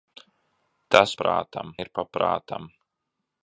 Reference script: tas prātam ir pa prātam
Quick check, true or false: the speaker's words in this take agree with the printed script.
true